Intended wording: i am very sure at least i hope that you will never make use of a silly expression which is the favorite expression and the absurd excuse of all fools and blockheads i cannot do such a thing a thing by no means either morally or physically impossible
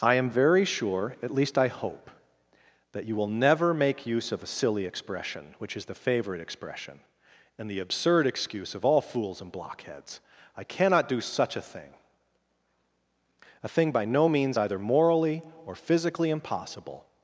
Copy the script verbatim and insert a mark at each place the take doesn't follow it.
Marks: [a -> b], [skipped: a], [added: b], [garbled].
i am very sure at least i hope that you will never make use of a silly expression which is the favorite expression and the absurd excuse of all fools and blockheads i cannot do such a thing a thing by no means either morally or physically impossible